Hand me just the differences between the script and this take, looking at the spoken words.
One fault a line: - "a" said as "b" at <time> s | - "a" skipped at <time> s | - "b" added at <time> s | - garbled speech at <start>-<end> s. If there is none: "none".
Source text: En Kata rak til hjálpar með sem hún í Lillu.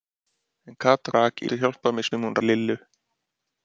none